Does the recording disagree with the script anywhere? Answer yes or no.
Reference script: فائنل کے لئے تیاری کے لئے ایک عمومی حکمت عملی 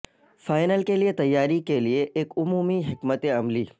no